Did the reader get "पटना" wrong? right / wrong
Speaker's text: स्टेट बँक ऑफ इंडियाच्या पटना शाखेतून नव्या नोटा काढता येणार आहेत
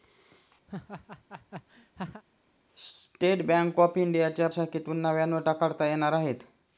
wrong